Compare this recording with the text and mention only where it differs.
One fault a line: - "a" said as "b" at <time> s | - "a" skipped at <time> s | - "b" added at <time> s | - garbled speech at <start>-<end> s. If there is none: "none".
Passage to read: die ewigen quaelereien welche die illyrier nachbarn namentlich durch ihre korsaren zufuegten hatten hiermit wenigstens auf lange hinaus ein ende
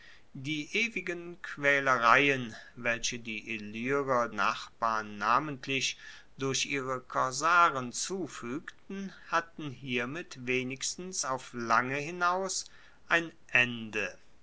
none